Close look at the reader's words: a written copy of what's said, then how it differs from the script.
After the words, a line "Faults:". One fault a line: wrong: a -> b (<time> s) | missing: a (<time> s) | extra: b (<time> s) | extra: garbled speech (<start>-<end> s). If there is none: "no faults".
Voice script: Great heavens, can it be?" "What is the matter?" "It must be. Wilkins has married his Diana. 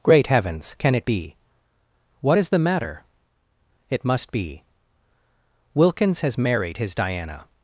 Great heavens, can it be?" "What is the matter?" "It must be. Wilkins has married his Diana.
Faults:
no faults